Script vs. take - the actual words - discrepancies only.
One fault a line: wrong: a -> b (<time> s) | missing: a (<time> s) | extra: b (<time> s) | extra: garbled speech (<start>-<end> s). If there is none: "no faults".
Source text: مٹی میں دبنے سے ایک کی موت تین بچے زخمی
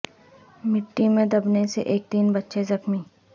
missing: کی موت (2.1 s)